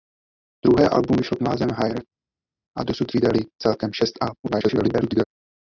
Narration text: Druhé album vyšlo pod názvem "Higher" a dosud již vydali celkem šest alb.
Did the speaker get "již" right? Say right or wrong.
wrong